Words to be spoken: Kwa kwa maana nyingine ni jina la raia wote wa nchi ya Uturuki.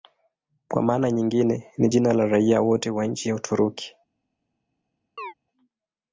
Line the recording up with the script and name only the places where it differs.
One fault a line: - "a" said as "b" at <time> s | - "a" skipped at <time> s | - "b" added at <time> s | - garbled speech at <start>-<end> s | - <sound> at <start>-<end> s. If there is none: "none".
- "kwa" skipped at 0.8 s
- chirp at 5.2-5.3 s